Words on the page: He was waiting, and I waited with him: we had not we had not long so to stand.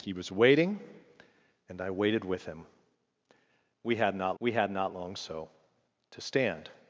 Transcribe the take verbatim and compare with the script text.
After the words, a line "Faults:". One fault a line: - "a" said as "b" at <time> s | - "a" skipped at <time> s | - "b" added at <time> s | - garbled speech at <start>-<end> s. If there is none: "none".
He was waiting, and I waited with him: we had not we had not long so to stand.
Faults:
none